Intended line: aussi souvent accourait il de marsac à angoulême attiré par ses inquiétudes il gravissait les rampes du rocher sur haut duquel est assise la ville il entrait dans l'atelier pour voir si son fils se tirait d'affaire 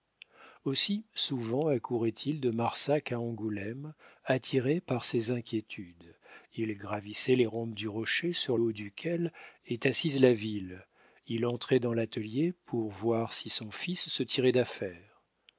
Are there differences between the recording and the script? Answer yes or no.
no